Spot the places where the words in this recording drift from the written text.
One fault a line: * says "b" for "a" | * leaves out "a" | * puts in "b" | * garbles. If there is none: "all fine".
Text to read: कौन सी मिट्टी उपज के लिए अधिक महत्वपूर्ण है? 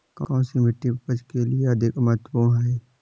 all fine